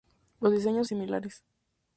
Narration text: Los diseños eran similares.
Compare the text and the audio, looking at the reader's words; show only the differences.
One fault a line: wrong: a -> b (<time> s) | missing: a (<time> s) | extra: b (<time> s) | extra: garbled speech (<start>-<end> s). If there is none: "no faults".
missing: eran (0.9 s)